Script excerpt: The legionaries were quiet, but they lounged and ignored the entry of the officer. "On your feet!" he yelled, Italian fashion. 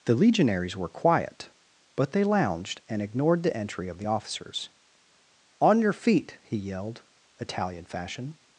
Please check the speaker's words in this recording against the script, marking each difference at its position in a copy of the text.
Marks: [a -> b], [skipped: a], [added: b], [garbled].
The legionaries were quiet, but they lounged and ignored the entry of the [officer. -> officers] "On your feet!" he yelled, Italian fashion.